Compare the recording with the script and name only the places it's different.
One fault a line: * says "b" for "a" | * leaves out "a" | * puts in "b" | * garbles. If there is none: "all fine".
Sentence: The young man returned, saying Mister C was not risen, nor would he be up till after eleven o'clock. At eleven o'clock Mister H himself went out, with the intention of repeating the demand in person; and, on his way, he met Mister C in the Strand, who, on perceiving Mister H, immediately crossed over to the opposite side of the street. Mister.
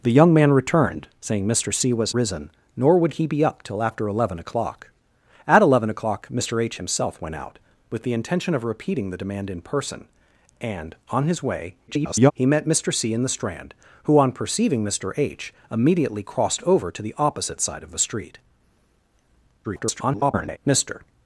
* leaves out "not"
* garbles
* garbles